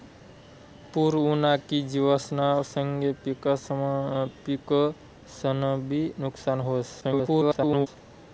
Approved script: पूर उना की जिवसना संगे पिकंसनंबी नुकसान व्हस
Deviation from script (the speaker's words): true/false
true